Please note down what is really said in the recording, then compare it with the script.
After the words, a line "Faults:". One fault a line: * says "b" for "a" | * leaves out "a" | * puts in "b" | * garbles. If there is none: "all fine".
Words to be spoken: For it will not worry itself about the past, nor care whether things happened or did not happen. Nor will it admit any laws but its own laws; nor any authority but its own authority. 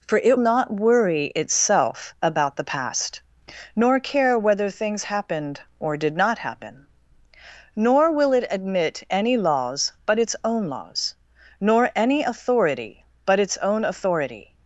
For it not worry itself about the past, nor care whether things happened or did not happen. Nor will it admit any laws but its own laws; nor any authority but its own authority.
Faults:
* leaves out "will"